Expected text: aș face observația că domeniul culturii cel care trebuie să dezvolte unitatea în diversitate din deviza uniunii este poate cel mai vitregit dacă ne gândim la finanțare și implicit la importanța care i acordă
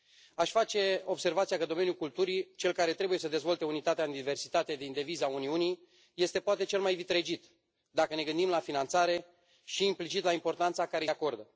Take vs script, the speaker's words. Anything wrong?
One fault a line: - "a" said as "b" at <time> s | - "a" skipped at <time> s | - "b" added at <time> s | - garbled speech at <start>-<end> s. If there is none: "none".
none